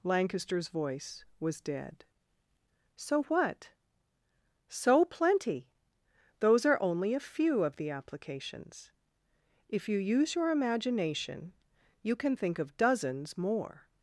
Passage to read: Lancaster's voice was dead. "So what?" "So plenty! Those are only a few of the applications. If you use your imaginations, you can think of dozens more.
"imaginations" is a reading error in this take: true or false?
true